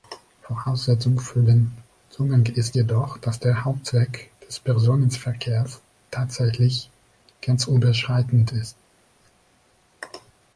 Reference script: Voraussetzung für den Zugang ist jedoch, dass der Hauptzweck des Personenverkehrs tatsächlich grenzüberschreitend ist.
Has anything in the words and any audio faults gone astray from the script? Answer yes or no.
no